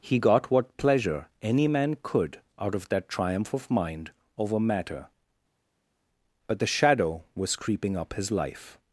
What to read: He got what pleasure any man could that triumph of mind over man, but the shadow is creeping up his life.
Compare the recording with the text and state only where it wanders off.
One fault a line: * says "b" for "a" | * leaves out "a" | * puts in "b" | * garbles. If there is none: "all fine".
* puts in "out of"
* says "matter" for "man"
* says "was" for "is"